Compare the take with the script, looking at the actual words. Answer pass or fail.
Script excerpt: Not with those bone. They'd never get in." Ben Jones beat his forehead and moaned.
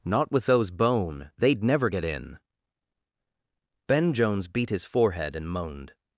pass